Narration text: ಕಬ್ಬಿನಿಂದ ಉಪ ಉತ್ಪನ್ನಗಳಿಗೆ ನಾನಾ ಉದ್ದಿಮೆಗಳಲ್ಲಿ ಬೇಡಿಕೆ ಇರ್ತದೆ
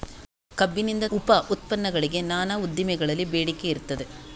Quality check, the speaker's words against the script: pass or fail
pass